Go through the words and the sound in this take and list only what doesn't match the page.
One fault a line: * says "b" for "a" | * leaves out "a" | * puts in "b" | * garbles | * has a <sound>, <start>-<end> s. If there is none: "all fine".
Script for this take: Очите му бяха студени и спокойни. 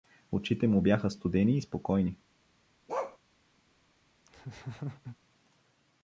* has a bark, 2.9-3.2 s
* has a laugh, 4.3-5.2 s